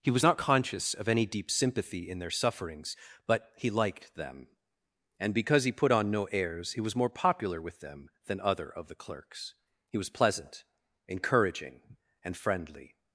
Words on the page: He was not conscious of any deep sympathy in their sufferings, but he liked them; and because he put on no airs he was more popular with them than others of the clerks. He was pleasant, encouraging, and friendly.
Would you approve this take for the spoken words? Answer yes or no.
no